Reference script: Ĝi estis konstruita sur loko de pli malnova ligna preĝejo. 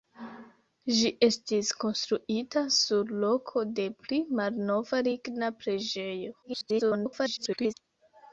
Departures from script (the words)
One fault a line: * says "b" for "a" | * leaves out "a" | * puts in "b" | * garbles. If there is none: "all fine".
* garbles